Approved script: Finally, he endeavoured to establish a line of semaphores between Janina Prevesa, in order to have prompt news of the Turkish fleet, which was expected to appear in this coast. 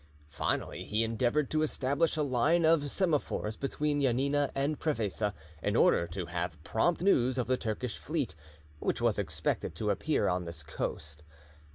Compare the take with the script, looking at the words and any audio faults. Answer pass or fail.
fail